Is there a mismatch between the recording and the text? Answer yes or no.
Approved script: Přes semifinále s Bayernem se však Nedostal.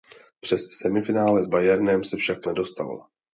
no